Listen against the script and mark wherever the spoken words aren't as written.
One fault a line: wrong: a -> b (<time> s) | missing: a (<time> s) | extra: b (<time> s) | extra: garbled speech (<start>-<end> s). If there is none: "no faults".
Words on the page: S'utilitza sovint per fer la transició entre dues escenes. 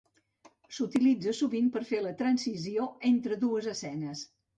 no faults